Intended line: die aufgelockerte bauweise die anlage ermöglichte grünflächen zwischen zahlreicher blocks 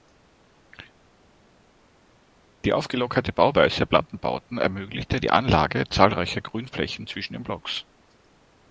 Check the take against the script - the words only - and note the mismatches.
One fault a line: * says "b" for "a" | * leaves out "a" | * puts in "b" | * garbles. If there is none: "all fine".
* puts in "der plattenbauten ermöglichte"
* says "zahlreicher" for "ermöglichte"
* says "den" for "zahlreicher"